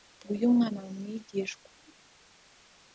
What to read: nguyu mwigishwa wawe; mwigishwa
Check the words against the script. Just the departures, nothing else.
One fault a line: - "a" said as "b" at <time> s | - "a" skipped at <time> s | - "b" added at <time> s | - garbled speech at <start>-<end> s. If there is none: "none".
- "mwigishwa" said as "umwana" at 0.5 s